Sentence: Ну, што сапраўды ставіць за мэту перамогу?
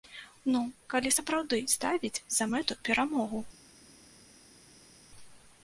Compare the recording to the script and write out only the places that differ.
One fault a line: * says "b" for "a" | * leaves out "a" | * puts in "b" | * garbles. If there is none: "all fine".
* says "калі" for "што"